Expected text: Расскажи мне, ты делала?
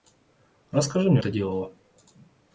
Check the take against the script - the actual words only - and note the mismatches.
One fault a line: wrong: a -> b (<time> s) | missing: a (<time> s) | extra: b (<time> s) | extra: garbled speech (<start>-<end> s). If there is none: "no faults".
no faults